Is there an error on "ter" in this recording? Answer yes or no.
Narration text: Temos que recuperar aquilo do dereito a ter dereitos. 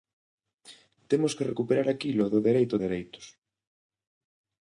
yes